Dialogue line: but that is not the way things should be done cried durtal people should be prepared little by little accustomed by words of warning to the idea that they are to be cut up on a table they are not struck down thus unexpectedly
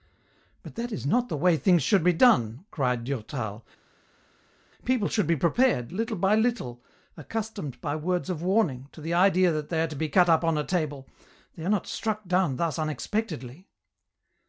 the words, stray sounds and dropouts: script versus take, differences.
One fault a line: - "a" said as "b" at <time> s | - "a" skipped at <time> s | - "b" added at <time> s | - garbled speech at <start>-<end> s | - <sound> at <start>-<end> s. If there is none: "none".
none